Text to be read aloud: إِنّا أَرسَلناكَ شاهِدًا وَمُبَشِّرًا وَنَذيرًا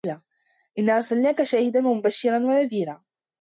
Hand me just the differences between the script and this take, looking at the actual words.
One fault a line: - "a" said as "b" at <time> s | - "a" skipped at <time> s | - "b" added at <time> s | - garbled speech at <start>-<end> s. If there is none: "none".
none